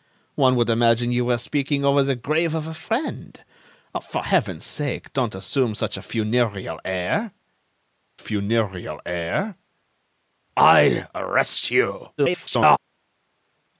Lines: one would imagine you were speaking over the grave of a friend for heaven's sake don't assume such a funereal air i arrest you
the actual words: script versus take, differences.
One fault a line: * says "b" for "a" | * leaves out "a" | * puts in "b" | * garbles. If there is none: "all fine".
* puts in "funereal air"
* garbles